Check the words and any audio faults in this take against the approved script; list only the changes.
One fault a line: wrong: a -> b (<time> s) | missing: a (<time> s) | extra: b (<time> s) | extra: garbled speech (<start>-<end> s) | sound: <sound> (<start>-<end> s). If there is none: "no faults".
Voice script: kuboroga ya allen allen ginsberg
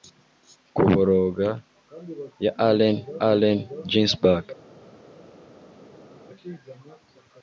no faults